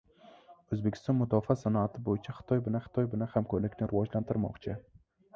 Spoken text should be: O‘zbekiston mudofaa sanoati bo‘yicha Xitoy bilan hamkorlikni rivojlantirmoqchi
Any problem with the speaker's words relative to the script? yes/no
yes